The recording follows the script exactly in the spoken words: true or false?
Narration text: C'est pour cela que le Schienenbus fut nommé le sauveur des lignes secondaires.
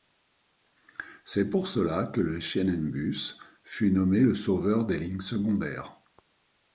true